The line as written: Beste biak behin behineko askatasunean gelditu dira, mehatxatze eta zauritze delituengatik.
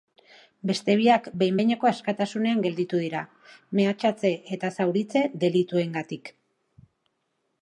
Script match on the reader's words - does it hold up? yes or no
yes